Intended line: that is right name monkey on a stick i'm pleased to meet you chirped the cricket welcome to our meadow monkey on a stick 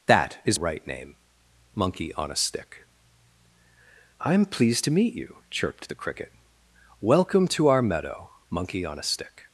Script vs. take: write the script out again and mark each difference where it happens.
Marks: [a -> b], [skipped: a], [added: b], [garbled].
that is right name monkey on a stick i'm pleased to meet you chirped the cricket welcome to our meadow monkey on a stick